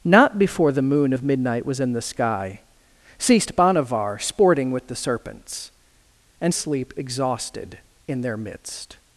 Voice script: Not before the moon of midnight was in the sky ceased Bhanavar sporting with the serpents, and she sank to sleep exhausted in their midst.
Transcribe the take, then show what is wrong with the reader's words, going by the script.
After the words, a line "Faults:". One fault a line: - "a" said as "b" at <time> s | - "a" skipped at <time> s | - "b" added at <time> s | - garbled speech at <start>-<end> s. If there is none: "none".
Not before the moon of midnight was in the sky ceased Bhanavar sporting with the serpents, and sleep exhausted in their midst.
Faults:
- "she sank to" skipped at 6.5 s